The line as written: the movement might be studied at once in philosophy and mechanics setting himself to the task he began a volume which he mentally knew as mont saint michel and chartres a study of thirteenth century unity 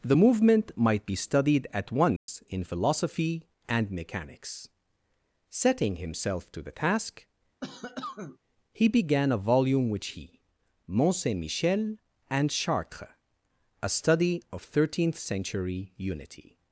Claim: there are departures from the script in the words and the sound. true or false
true